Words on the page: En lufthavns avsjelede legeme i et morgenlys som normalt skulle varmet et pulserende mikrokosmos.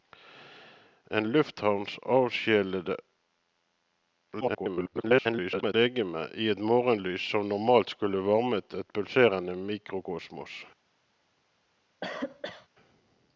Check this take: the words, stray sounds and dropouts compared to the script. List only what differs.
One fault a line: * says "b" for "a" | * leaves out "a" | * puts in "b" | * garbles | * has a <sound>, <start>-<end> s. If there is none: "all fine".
* garbles
* has a cough, 12.0-12.7 s